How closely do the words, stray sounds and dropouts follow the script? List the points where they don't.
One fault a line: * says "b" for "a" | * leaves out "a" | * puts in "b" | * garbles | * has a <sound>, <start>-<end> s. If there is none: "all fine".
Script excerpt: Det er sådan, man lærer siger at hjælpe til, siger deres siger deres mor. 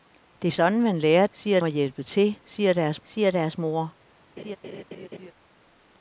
* has a laugh, 4.4-5.3 s